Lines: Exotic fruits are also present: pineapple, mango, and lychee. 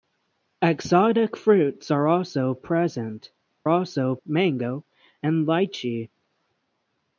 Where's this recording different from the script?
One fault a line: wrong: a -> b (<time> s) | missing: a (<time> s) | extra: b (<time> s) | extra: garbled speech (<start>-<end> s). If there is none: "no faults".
wrong: pineapple -> also (3.7 s)